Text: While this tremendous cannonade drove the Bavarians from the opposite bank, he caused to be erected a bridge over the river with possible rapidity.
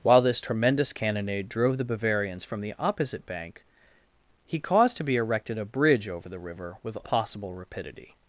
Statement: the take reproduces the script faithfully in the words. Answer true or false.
true